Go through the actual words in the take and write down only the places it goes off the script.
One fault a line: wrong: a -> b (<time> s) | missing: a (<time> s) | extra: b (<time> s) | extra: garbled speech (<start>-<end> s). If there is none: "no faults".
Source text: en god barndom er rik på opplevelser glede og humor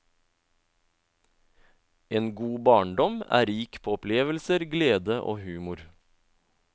no faults